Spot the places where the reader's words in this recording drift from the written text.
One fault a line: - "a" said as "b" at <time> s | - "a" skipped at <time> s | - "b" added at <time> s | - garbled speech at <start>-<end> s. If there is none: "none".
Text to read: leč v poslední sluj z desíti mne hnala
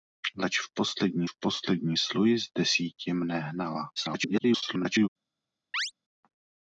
- "v poslední" added at 1.2 s
- garbled speech at 4.0-5.1 s